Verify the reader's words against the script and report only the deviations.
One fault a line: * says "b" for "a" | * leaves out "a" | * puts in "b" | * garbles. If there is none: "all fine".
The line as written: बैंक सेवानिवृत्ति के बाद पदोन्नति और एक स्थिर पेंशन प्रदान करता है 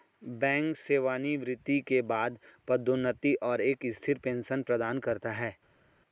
all fine